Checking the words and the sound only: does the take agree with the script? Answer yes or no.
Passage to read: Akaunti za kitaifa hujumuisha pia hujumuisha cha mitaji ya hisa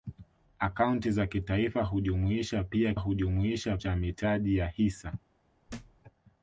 no